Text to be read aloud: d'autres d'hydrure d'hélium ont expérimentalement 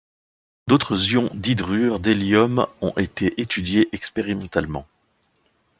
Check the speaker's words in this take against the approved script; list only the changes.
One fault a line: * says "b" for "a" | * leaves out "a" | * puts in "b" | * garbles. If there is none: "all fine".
* puts in "ions"
* puts in "été étudiés"